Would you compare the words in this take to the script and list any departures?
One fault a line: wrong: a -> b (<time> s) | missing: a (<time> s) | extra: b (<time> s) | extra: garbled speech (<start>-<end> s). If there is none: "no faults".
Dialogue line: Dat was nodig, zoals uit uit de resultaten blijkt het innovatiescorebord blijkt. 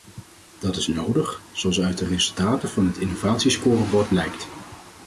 wrong: was -> is (0.8 s)
missing: uit (2.0 s)
wrong: blijkt -> van (2.7 s)